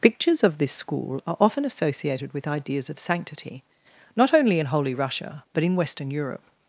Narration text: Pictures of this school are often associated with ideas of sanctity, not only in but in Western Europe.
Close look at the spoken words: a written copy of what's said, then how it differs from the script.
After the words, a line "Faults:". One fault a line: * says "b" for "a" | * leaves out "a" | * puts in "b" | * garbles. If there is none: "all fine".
Pictures of this school are often associated with ideas of sanctity, not only in holy Russia but in Western Europe.
Faults:
* puts in "holy Russia"